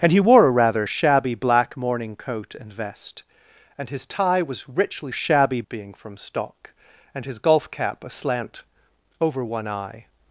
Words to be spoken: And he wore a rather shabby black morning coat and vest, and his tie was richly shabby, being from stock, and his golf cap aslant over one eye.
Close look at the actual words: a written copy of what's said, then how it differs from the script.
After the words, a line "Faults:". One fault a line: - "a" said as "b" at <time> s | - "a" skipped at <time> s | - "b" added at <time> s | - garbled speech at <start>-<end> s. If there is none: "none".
And he wore a rather shabby black morning coat and vest, and his tie was richly shabby, being from stock, and his golf cap aslant over one eye.
Faults:
none